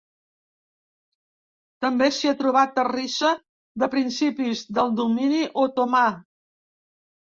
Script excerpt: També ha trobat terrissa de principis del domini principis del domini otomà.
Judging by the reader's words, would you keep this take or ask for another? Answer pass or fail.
fail